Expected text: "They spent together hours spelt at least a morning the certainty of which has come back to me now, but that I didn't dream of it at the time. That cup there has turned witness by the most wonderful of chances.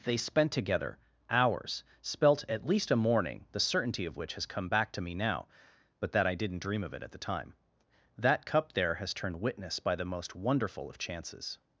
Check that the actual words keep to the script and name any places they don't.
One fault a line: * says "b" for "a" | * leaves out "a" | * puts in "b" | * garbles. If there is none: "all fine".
all fine